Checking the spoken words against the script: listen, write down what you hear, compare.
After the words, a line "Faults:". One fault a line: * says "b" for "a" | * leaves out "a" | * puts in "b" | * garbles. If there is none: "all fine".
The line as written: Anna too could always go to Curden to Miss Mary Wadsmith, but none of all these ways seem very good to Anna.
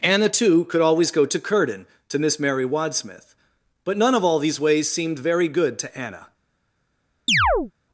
Anna too could always go to Curden to Miss Mary Wadsmith, but none of all these ways seemed very good to Anna.
Faults:
* says "seemed" for "seem"